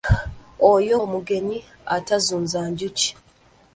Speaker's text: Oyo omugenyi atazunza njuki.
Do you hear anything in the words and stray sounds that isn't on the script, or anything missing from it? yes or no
no